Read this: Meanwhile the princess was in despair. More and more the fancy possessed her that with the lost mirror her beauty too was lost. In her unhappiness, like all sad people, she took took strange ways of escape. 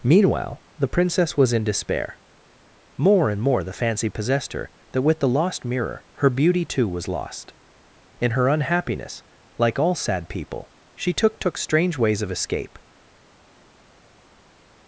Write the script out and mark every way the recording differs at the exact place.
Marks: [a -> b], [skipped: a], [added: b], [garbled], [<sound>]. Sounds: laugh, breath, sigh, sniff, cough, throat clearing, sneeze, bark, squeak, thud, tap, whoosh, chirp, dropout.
Meanwhile the princess was in despair. More and more the fancy possessed her that with the lost mirror her beauty too was lost. In her unhappiness, like all sad people, she took took strange ways of escape.